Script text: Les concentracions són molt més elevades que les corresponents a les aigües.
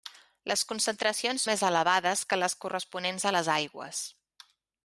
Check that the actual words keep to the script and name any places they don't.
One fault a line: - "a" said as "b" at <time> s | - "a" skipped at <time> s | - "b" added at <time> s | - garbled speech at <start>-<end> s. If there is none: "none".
- "són molt" skipped at 1.4 s